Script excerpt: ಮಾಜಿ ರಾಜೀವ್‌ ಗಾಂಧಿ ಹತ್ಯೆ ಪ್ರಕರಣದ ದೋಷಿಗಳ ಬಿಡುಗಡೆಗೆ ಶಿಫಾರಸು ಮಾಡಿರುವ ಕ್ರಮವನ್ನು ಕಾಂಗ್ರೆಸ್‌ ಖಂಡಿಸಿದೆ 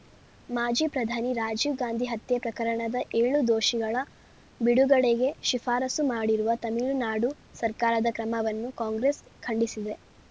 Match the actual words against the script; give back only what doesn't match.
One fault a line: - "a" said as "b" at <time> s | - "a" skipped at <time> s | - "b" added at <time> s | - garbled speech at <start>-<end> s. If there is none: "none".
- "ಪ್ರಧಾನಿ" added at 0.9 s
- "ಏಳು" added at 3.1 s
- "ತಮಿಳುನಾಡು ಸರ್ಕಾರದ" added at 6.6 s